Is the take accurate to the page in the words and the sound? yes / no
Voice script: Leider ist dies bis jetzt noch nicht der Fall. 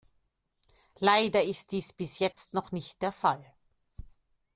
no